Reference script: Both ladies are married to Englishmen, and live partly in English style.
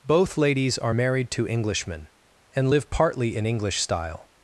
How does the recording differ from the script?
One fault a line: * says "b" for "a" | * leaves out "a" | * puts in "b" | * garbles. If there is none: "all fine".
all fine